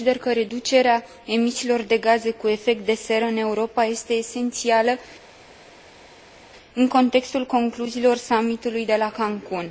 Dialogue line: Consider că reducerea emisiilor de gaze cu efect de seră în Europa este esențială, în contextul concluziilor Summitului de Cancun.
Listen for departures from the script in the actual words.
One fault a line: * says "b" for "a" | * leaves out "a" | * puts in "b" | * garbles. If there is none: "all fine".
* puts in "la"